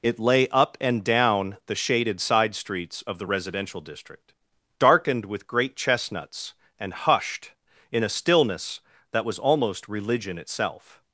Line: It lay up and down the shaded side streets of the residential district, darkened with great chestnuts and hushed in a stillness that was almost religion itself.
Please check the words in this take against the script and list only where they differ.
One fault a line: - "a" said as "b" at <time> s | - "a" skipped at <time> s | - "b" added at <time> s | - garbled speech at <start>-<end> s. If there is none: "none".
none